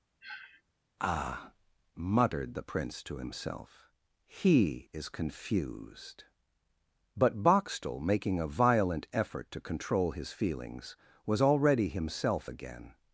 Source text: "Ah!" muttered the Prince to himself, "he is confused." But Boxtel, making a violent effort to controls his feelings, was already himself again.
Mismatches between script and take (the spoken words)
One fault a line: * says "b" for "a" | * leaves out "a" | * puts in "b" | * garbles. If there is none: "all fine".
* says "control" for "controls"